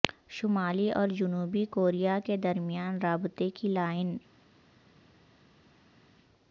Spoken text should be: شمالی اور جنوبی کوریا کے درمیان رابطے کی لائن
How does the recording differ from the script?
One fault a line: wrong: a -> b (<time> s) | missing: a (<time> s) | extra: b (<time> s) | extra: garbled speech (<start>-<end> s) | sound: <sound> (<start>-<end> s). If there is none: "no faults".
no faults